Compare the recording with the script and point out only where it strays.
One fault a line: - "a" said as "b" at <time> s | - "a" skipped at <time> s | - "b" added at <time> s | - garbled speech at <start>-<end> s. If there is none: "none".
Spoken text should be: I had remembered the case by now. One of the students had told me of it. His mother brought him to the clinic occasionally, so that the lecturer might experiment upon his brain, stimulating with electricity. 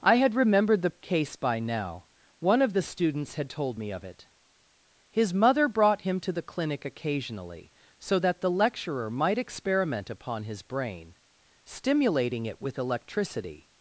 - "it" added at 12.4 s